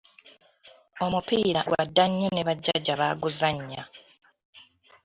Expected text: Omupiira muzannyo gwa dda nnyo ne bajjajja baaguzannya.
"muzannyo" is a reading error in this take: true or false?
true